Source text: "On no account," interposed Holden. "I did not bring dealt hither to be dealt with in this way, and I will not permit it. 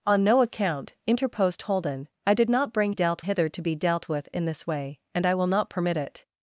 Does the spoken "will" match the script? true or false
true